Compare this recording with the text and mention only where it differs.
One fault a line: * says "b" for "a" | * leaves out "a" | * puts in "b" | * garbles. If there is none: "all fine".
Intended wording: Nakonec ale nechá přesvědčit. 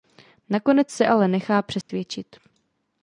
* puts in "se"